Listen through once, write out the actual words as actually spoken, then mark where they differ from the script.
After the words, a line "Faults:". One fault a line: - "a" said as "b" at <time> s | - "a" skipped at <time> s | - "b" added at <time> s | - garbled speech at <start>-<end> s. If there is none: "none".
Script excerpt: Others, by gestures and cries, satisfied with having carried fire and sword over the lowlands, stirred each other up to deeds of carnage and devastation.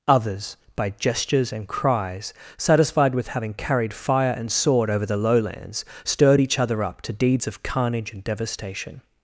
Others, by gestures and cries, satisfied with having carried fire and sword over the lowlands, stirred each other up to deeds of carnage and devastation.
Faults:
none